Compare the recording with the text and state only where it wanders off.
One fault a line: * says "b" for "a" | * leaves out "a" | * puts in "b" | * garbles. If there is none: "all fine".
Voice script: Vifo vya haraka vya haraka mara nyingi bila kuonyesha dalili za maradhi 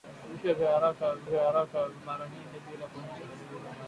all fine